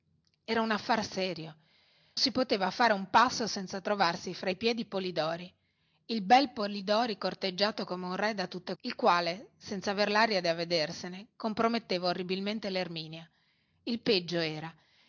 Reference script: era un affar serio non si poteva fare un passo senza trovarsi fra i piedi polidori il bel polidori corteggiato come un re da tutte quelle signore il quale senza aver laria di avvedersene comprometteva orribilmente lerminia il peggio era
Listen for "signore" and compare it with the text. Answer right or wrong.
wrong